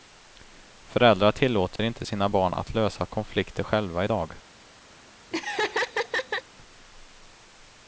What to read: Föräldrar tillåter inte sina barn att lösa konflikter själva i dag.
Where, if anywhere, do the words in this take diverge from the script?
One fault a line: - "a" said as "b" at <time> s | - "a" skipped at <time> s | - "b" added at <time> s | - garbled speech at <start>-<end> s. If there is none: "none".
none